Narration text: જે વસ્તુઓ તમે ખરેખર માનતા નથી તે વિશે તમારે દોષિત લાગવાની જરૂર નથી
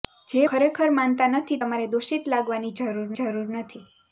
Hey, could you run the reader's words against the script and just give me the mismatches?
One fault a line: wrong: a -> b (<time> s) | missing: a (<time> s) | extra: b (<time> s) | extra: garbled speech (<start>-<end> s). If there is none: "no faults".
missing: વસ્તુઓ તમે (0.5 s)
missing: તે વિશે (1.6 s)
extra: જરૂર (3.2 s)